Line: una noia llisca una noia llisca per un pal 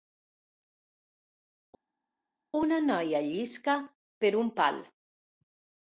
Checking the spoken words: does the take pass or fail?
fail